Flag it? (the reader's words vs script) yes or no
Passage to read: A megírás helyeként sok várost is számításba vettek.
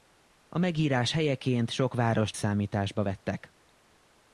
yes